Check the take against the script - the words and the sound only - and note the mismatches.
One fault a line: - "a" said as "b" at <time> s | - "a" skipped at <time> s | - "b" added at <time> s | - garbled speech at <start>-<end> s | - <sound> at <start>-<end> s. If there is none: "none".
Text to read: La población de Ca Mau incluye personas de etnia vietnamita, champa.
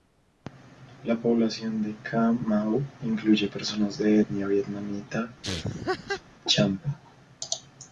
- laugh at 5.4-6.2 s